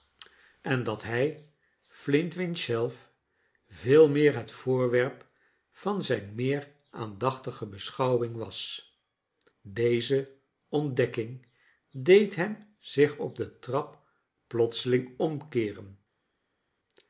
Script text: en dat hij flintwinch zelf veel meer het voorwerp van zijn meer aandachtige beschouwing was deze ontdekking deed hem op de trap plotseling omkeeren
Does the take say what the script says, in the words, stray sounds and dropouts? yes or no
no